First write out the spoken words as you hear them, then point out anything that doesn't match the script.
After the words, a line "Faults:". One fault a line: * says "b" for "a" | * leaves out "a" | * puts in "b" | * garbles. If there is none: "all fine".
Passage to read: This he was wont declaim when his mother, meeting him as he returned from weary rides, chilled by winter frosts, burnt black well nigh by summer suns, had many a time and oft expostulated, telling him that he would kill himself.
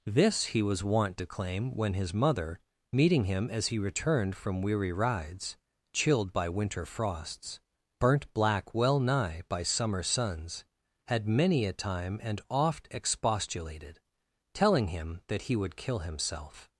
This he was wont declaim when his mother, meeting him as he returned from weary rides, chilled by winter frosts, burnt black well nigh by summer suns, had many a time and oft expostulated, telling him that he would kill himself.
Faults:
all fine